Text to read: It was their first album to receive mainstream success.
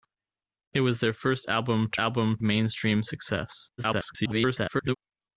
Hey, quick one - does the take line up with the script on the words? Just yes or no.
no